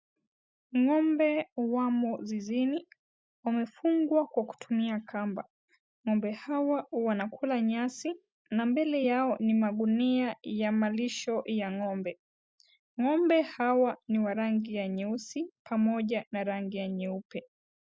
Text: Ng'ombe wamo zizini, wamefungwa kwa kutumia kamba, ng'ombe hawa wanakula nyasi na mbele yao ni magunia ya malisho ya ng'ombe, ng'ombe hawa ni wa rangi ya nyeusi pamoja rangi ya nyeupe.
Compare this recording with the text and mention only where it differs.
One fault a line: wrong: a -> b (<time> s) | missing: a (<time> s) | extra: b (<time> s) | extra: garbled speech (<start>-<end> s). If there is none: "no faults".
extra: na (16.3 s)